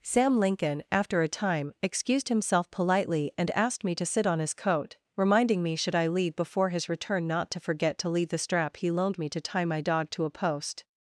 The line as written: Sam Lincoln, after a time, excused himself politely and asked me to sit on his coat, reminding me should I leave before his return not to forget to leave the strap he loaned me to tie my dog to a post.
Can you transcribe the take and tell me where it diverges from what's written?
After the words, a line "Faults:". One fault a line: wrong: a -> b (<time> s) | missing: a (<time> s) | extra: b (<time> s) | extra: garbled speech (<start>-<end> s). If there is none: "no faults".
Sam Lincoln, after a time, excused himself politely and asked me to sit on his coat, reminding me should I leave before his return not to forget to leave the strap he loaned me to tie my dog to a post.
Faults:
no faults